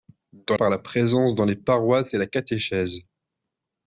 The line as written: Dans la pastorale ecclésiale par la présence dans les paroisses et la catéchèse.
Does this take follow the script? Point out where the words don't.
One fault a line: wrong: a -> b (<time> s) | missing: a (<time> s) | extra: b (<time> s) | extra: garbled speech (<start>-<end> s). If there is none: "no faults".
missing: la pastorale ecclésiale (0.6 s)